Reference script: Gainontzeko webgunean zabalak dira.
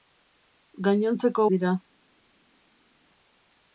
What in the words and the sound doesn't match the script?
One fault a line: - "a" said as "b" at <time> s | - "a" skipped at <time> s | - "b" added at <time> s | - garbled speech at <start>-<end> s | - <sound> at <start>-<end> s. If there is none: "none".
- "webgunean zabalak" skipped at 1.4 s